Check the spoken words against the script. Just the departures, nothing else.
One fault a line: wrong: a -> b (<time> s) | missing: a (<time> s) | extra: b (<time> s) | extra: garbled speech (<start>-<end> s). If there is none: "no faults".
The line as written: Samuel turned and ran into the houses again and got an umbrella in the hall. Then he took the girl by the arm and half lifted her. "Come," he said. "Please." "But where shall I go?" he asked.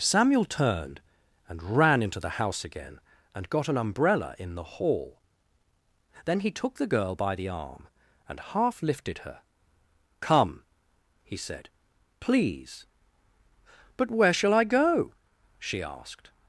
wrong: houses -> house (2.3 s)
wrong: he -> she (15.6 s)